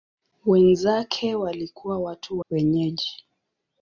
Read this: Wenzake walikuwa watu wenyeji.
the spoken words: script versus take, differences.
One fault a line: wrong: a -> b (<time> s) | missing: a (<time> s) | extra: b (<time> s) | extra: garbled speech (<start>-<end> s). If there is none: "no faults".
no faults